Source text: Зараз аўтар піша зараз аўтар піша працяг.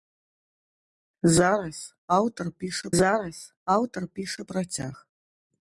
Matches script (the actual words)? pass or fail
pass